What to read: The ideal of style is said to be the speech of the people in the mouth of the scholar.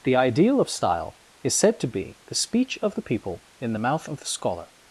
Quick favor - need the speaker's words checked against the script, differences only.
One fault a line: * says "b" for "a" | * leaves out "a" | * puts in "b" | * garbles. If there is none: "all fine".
all fine